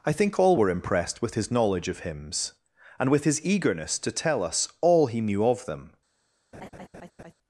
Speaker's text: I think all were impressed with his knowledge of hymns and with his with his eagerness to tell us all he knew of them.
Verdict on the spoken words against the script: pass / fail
fail